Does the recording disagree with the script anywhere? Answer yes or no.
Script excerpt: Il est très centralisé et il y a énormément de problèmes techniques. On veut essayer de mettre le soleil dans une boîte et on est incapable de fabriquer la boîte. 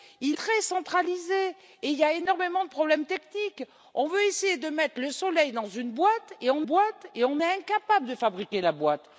yes